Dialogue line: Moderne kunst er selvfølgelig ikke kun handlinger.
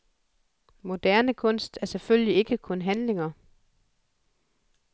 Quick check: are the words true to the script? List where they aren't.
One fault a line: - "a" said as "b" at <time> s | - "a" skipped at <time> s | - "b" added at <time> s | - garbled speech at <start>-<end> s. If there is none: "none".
none